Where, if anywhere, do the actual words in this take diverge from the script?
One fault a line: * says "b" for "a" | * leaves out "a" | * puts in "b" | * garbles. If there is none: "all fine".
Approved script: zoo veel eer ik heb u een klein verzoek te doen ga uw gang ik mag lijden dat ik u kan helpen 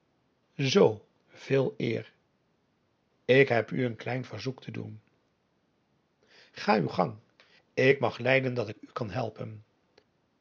all fine